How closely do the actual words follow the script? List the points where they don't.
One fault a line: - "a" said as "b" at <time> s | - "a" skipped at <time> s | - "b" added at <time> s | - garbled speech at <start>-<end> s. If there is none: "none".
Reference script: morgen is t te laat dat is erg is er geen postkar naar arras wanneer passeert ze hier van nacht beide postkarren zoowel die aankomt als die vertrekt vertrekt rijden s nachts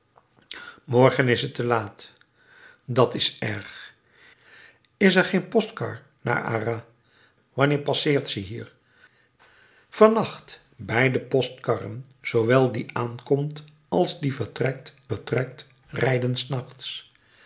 none